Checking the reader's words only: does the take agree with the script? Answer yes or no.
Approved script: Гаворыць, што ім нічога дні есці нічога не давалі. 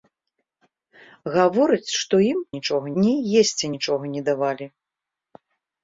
yes